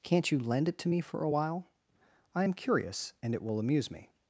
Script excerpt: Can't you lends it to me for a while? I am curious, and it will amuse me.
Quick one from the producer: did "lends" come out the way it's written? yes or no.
no